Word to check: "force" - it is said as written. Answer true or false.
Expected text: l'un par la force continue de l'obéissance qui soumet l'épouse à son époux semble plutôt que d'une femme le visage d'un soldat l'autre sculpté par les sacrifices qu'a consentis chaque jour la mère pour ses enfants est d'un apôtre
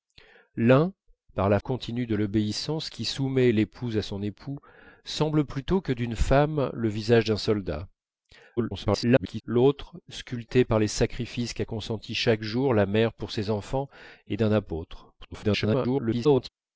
false